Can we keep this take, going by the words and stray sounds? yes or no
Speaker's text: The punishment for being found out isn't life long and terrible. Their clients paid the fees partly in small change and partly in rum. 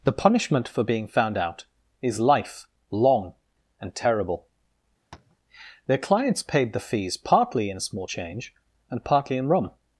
no